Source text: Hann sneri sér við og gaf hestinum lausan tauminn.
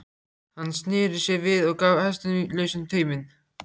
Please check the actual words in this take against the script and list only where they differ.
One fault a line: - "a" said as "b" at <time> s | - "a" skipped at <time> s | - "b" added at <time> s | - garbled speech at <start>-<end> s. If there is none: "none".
none